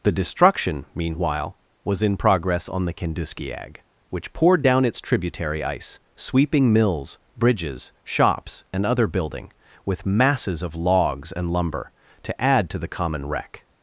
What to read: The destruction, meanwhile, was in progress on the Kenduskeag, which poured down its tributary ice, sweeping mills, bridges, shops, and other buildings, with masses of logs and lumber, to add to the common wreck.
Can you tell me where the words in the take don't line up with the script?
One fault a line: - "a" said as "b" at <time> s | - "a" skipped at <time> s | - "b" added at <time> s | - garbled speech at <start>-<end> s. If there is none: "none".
- "buildings" said as "building" at 9.1 s